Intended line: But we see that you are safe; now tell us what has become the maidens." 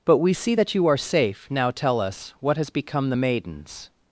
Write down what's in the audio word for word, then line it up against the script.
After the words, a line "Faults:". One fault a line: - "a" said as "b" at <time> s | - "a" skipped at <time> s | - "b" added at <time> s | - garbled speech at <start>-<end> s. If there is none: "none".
But we see that you are safe; now tell us what has become the maidens."
Faults:
none